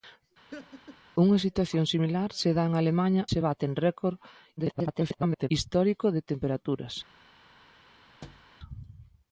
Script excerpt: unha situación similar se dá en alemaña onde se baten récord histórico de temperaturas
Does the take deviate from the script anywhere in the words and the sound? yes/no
yes